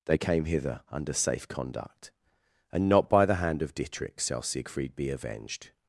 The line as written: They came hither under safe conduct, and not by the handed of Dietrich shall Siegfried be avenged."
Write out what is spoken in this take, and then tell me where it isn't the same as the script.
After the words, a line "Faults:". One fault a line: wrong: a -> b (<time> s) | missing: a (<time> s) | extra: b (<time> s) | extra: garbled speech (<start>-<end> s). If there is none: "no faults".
They came hither under safe conduct, and not by the hand of Dietrich shall Siegfried be avenged."
Faults:
wrong: handed -> hand (3.4 s)